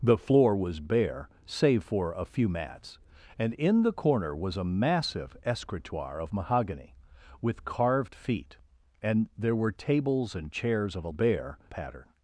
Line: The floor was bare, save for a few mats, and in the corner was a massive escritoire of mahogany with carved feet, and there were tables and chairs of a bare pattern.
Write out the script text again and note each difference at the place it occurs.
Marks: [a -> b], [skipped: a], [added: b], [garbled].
The floor was bare, save for a few mats, and in the corner was a massive escritoire of mahogany with carved feet, and there were tables and chairs of a bare pattern.